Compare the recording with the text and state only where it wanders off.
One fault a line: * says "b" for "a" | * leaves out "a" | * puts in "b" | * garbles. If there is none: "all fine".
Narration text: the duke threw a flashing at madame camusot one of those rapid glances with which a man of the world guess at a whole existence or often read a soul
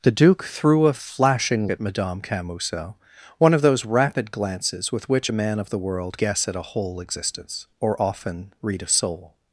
all fine